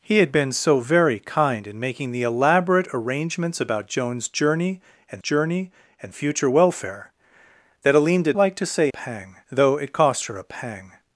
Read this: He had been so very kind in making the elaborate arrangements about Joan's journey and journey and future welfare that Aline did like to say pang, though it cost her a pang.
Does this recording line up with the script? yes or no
yes